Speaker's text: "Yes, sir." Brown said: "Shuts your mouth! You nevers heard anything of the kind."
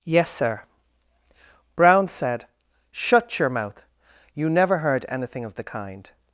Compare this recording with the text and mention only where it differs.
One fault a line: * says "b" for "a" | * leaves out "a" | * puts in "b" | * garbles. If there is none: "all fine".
* says "Shut" for "Shuts"
* says "never" for "nevers"